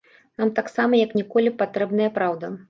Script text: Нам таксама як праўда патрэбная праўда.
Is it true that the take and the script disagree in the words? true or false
true